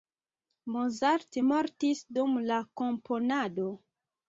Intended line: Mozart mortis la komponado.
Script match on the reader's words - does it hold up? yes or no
no